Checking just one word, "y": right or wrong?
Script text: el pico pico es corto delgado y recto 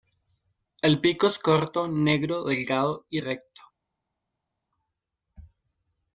right